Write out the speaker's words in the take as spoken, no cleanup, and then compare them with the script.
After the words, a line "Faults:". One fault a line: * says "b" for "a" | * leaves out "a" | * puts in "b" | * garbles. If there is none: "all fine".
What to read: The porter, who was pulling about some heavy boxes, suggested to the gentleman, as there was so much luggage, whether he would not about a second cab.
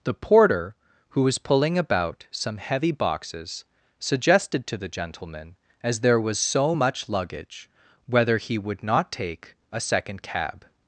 The porter, who was pulling about some heavy boxes, suggested to the gentleman, as there was so much luggage, whether he would not take a second cab.
Faults:
* says "take" for "about"